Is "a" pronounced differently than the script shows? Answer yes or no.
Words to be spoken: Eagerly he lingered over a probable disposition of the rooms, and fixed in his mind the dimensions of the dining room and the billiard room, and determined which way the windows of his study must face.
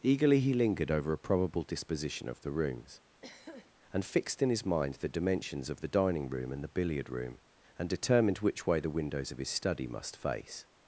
no